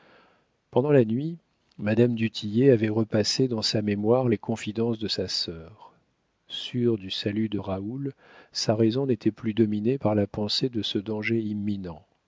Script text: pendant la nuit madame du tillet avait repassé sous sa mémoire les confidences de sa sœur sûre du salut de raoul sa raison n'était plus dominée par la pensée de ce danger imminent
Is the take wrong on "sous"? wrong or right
wrong